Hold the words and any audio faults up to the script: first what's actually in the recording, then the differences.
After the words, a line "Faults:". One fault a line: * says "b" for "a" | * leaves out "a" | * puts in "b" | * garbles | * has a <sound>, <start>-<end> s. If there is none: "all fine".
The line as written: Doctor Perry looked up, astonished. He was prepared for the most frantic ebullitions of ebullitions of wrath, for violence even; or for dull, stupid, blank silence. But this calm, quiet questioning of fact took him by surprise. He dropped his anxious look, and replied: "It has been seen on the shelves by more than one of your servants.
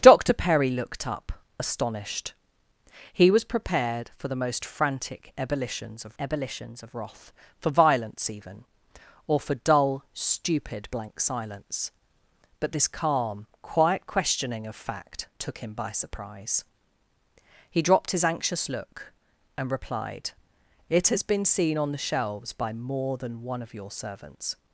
Doctor Perry looked up, astonished. He was prepared for the most frantic ebullitions of ebullitions of wrath, for violence even; or for dull, stupid, blank silence. But this calm, quiet questioning of fact took him by surprise. He dropped his anxious look, and replied: "It has been seen on the shelves by more than one of your servants.
Faults:
all fine